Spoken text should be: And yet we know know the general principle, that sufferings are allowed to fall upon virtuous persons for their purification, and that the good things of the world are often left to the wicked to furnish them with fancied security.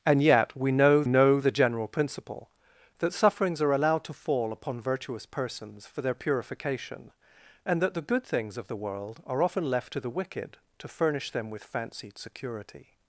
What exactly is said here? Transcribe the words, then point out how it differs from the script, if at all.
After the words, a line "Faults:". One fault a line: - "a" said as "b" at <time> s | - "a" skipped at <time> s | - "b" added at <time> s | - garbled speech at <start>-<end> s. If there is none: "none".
And yet we know know the general principle, that sufferings are allowed to fall upon virtuous persons for their purification, and that the good things of the world are often left to the wicked to furnish them with fancied security.
Faults:
none